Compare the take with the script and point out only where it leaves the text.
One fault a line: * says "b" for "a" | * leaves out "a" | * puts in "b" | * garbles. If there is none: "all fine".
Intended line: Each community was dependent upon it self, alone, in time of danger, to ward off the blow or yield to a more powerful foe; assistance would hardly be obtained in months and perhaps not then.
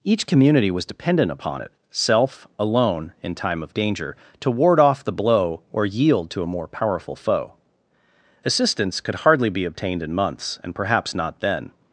* says "could" for "would"